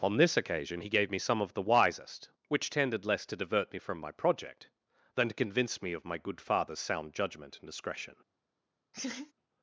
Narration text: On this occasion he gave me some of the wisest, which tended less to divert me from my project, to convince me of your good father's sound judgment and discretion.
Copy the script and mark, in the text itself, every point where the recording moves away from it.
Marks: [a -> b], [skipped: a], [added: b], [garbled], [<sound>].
On this occasion he gave me some of the wisest, which tended less to divert me from my project, [added: than] to convince me of [your -> my] good father's sound judgment and discretion. [laugh]